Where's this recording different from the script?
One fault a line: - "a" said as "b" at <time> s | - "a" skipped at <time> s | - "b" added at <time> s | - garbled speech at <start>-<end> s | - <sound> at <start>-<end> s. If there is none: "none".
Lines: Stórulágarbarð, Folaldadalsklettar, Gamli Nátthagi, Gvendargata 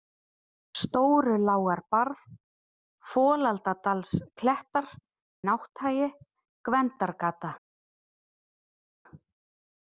- "Gamli" skipped at 4.9 s